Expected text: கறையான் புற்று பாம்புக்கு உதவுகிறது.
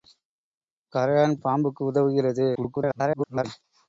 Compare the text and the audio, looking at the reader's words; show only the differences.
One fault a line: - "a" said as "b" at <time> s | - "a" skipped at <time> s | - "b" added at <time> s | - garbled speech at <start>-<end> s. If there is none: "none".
- "புற்று" skipped at 1.4 s
- garbled speech at 2.5-3.4 s